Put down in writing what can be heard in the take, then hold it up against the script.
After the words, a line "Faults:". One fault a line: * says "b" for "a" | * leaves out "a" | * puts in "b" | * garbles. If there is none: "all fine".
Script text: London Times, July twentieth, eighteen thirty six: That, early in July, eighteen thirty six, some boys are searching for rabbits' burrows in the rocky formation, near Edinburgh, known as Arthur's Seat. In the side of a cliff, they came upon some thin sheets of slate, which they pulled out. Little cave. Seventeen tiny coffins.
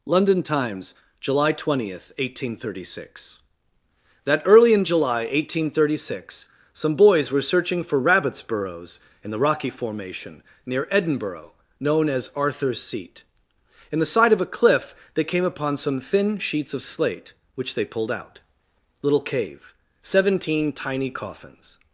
London Times, July twentieth, eighteen thirty six: That, early in July, eighteen thirty six, some boys were searching for rabbits' burrows in the rocky formation, near Edinburgh, known as Arthur's Seat. In the side of a cliff, they came upon some thin sheets of slate, which they pulled out. Little cave. Seventeen tiny coffins.
Faults:
* says "were" for "are"